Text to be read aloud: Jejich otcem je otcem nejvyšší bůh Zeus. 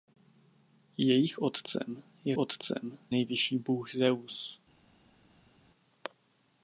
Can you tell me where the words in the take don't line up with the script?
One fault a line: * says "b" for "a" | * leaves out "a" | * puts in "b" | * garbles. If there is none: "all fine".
all fine